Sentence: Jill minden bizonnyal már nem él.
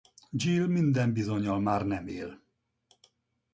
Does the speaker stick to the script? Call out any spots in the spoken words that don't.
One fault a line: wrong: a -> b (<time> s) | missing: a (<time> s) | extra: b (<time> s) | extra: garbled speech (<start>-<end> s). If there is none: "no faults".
no faults